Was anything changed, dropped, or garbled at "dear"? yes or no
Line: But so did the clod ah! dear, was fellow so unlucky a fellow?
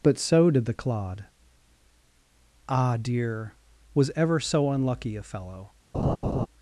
no